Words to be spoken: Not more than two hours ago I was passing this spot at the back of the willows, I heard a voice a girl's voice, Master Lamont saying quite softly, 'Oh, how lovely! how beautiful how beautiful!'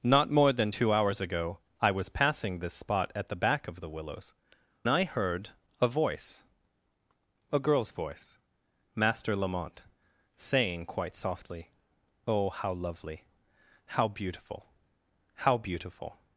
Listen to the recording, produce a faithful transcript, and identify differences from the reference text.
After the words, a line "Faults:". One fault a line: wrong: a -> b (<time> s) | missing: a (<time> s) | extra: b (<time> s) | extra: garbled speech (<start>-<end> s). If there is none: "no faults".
Not more than two hours ago I was passing this spot at the back of the willows, I heard a voice a girl's voice, Master Lamont saying quite softly, 'Oh, how lovely! how beautiful how beautiful!'
Faults:
no faults